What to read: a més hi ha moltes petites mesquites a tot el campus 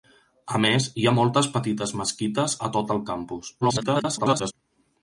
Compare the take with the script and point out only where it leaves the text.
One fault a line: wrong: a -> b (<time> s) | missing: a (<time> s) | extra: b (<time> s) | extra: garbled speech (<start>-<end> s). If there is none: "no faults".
extra: garbled speech (3.6-4.5 s)